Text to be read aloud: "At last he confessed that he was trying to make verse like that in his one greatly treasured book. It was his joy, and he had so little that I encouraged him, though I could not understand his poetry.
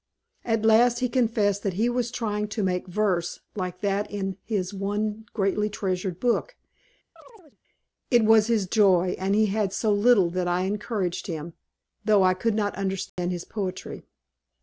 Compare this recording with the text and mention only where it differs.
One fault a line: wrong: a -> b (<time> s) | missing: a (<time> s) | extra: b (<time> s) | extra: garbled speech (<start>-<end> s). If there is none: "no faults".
no faults